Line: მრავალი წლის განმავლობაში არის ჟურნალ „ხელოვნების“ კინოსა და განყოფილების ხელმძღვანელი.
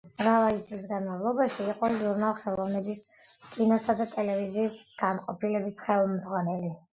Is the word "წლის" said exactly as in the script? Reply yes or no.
yes